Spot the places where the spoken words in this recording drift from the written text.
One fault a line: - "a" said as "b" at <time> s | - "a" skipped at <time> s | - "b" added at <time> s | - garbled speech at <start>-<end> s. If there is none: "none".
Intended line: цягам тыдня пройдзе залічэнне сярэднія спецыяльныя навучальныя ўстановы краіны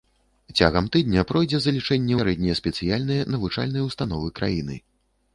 none